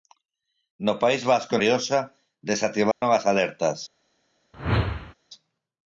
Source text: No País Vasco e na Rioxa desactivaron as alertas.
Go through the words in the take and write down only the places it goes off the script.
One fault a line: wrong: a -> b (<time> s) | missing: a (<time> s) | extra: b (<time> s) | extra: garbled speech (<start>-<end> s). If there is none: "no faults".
missing: na (1.6 s)